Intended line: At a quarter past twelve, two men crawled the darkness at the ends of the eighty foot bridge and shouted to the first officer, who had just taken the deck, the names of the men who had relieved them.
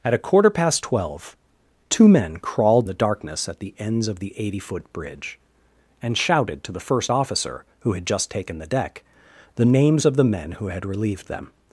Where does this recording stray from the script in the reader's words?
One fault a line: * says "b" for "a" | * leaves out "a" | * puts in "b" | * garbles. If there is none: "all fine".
all fine